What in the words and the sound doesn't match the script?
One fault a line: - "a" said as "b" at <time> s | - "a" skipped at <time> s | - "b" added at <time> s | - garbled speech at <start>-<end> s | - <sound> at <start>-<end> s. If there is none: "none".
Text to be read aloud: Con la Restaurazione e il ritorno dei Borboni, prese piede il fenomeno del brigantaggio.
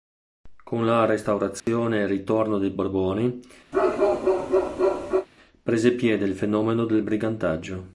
- dropout at 1.6-1.7 s
- bark at 3.7-5.3 s